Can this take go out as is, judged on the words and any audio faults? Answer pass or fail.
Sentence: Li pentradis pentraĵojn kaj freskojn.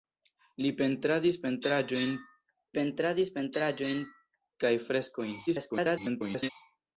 fail